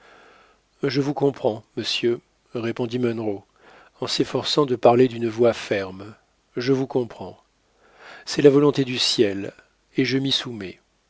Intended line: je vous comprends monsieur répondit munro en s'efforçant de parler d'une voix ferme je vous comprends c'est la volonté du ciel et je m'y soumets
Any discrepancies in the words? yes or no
no